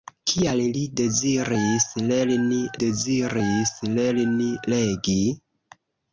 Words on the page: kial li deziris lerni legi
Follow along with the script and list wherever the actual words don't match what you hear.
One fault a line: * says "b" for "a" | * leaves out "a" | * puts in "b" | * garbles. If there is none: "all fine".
* puts in "deziris lerni"